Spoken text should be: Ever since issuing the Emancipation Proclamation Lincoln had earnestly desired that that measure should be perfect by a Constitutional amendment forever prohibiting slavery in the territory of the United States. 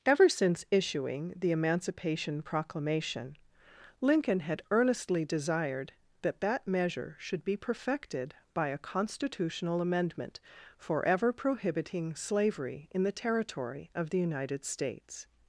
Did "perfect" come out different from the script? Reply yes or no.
yes